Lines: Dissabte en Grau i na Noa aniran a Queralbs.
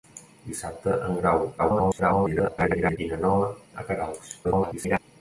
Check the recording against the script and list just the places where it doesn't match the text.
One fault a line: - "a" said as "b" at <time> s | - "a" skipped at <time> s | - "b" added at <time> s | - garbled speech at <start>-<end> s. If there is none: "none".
- garbled speech at 1.6-3.0 s
- "aniran" skipped at 3.5 s
- garbled speech at 4.4-5.0 s